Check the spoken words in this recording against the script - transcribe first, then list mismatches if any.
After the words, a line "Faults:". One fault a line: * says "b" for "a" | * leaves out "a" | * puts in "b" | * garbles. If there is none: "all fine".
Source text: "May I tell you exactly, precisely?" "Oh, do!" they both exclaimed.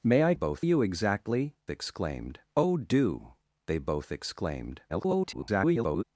"May I both you exactly, exclaimed?" "Oh, do!" they both exclaimed. [garbled]
Faults:
* says "both" for "tell"
* says "exclaimed" for "precisely"
* garbles